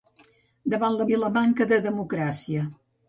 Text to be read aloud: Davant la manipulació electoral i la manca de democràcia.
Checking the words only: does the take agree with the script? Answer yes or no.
no